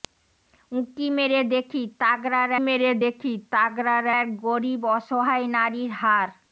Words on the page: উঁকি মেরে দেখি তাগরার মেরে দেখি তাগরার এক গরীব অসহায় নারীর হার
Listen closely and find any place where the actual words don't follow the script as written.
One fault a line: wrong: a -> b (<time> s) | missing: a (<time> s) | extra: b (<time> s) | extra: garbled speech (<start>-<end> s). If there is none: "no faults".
no faults